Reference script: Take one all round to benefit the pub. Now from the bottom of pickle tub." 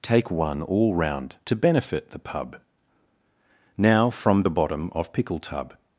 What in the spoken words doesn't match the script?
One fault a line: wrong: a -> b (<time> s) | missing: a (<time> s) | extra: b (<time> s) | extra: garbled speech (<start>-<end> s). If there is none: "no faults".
no faults